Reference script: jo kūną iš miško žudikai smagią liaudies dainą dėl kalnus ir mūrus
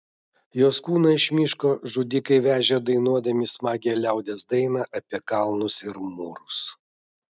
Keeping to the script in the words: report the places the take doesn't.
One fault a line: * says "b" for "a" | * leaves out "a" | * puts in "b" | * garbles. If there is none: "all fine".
* says "jos" for "jo"
* puts in "vežė dainuodami"
* says "apie" for "dėl"